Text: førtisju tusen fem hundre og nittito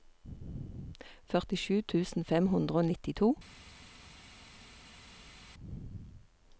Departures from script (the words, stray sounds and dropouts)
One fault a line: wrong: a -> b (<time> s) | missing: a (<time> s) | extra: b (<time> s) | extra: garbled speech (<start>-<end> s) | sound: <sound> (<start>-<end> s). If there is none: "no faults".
no faults